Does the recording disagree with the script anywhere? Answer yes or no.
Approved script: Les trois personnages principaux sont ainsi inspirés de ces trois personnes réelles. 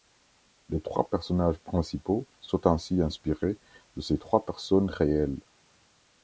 no